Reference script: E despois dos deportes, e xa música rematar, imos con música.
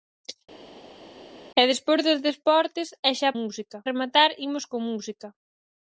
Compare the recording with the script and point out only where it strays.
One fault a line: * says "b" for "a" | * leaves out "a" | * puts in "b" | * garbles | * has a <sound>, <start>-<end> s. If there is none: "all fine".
all fine